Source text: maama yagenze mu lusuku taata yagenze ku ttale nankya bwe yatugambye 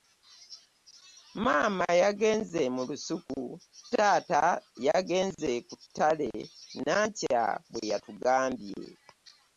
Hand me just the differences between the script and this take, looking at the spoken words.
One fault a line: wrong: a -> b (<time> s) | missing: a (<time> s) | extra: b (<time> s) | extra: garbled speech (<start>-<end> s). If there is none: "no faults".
no faults